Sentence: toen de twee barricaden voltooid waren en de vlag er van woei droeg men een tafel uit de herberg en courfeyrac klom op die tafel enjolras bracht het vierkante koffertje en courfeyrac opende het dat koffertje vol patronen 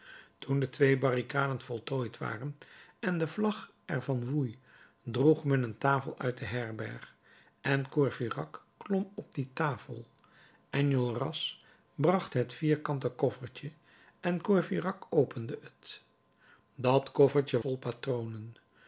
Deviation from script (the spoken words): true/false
false